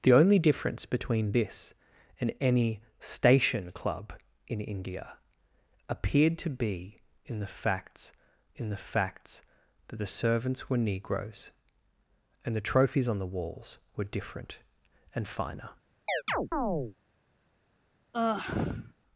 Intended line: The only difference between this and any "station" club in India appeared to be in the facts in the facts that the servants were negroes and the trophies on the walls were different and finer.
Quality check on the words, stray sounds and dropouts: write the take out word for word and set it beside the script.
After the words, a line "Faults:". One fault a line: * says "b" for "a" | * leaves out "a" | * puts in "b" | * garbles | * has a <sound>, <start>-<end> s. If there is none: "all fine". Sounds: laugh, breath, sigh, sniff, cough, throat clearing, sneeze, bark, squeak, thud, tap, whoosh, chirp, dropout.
The only difference between this and any "station" club in India appeared to be in the facts in the facts that the servants were negroes and the trophies on the walls were different and finer.
Faults:
* has a chirp, 16.1-17.0 s
* has a sigh, 18.1-18.9 s